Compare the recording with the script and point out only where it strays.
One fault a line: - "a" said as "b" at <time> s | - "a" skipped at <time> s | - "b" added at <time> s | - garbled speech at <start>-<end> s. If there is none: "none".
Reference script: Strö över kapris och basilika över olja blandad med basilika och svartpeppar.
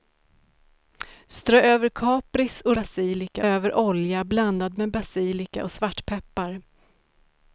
none